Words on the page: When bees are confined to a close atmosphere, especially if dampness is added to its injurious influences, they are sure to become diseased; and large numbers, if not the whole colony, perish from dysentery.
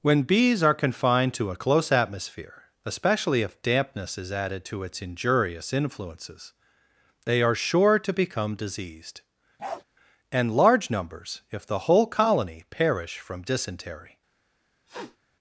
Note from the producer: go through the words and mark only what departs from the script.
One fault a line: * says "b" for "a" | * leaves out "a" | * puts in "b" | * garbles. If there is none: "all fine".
* leaves out "not"